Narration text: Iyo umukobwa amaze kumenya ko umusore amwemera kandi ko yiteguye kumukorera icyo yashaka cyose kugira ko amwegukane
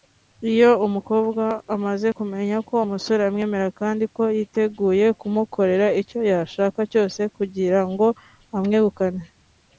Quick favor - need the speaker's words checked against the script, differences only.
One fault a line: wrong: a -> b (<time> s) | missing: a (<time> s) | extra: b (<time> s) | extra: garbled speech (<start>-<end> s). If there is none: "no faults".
wrong: ko -> ngo (7.9 s)